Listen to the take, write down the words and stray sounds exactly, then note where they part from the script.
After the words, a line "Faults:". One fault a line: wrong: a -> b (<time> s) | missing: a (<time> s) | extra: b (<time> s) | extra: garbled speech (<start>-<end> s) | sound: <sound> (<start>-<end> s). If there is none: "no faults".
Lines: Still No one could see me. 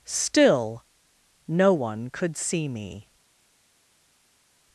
Still No one could see me.
Faults:
no faults